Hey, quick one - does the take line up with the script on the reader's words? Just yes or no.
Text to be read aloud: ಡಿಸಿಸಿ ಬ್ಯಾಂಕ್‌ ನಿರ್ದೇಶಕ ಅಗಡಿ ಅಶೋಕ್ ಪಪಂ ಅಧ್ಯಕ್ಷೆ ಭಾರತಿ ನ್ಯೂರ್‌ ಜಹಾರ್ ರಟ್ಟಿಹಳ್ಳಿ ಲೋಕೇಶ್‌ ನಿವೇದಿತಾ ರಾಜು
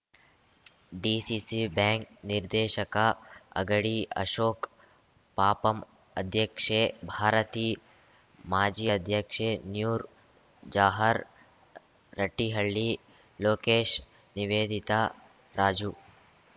no